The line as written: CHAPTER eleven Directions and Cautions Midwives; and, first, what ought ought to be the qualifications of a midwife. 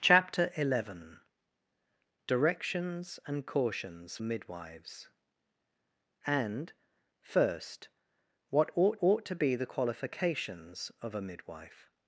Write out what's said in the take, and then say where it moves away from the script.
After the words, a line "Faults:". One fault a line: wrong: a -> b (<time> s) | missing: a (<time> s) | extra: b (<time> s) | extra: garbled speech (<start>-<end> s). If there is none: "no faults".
CHAPTER eleven Directions and Cautions Midwives; and, first, what ought ought to be the qualifications of a midwife.
Faults:
no faults